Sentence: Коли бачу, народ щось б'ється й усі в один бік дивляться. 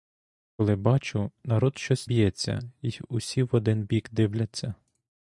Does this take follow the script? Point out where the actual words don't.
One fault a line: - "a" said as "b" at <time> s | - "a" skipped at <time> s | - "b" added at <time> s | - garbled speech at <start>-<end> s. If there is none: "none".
none